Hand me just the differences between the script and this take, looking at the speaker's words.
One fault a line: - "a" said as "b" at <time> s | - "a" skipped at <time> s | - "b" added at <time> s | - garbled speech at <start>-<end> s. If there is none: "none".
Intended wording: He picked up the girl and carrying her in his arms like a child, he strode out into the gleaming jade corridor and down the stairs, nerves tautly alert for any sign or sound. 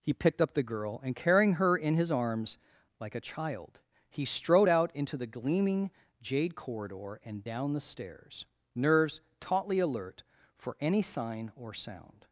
none